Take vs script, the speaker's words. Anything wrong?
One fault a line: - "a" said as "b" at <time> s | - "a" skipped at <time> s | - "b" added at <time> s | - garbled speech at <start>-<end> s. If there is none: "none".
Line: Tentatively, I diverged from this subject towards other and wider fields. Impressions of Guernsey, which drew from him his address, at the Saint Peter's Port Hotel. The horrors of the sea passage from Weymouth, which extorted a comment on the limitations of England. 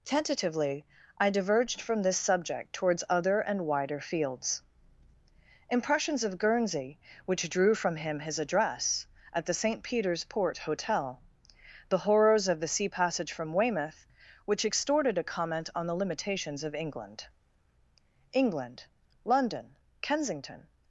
- "England London Kensington" added at 18.3 s